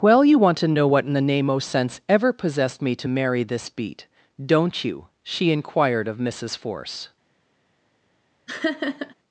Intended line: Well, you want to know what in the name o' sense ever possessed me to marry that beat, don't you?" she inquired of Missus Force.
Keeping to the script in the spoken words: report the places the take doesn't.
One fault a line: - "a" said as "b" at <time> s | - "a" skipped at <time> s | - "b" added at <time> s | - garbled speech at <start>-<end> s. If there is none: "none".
- "that" said as "this" at 3.4 s